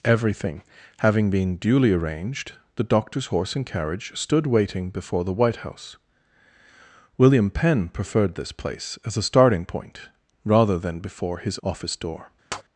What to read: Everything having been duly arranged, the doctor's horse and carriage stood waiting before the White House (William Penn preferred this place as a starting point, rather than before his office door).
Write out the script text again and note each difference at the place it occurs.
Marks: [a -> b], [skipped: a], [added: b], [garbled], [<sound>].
Everything having been duly arranged, the doctor's horse and carriage stood waiting before the White House (William Penn preferred this place as a starting point, rather than before his office door). [tap]